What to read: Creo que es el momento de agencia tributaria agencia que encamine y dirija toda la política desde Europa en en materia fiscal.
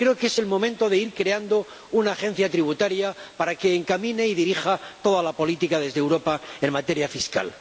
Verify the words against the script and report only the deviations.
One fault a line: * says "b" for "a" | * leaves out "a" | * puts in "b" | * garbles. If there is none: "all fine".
* puts in "ir creando una"
* says "para" for "agencia"
* leaves out "en"